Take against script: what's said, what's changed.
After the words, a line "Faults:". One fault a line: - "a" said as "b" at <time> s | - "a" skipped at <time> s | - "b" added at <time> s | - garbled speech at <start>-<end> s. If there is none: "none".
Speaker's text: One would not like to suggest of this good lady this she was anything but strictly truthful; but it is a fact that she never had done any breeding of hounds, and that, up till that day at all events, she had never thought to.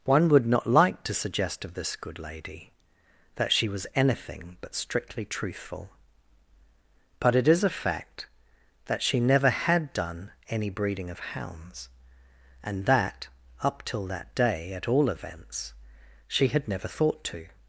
One would not like to suggest of this good lady that she was anything but strictly truthful; but it is a fact that she never had done any breeding of hounds, and that, up till that day at all events, she had never thought to.
Faults:
- "this" said as "that" at 3.4 s